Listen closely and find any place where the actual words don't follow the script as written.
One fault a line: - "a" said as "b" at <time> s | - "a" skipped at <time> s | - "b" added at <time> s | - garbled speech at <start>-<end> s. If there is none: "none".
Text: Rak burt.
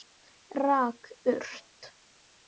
none